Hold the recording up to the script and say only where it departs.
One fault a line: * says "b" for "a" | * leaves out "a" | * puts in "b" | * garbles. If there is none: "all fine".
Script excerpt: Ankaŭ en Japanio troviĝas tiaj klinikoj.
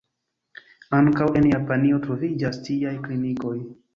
all fine